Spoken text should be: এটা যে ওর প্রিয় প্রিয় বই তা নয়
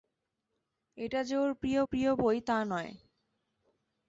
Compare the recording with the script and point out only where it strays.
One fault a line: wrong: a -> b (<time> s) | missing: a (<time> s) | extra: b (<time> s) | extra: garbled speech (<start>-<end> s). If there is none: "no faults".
no faults